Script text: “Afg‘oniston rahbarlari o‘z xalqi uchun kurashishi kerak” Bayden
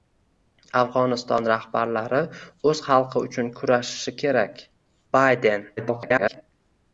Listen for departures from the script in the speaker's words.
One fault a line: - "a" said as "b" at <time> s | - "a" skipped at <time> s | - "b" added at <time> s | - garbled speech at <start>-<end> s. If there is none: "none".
- garbled speech at 5.8-6.4 s